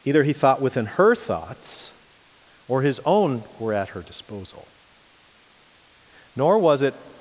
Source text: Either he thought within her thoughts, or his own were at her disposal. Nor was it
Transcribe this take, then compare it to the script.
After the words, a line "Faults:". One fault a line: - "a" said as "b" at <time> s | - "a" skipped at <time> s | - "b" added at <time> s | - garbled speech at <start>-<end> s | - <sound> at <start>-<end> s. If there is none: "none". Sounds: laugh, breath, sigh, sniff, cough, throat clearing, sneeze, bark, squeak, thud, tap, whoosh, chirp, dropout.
Either he thought within her thoughts, or his own were at her disposal. Nor was it
Faults:
none